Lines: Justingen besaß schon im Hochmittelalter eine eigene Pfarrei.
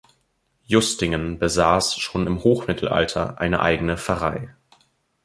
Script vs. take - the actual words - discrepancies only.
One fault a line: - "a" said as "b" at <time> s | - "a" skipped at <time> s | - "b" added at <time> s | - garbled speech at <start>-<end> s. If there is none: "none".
none